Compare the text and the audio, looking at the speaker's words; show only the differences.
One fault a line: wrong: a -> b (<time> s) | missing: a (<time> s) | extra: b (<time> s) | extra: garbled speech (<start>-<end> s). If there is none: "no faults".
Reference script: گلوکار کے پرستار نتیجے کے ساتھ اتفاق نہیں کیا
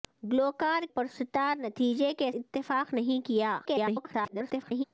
missing: کے (0.8 s)
missing: ساتھ (2.3 s)
extra: garbled speech (3.6-4.8 s)